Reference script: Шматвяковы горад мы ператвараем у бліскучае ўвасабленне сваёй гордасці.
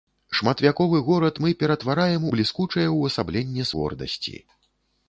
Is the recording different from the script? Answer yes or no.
yes